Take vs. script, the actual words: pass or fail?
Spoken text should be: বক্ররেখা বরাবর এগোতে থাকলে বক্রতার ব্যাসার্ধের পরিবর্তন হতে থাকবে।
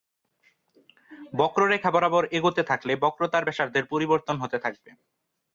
pass